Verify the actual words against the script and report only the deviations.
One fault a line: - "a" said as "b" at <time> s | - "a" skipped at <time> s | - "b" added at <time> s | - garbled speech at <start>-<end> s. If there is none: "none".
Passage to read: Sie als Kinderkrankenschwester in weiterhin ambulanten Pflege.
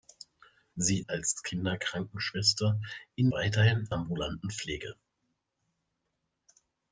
none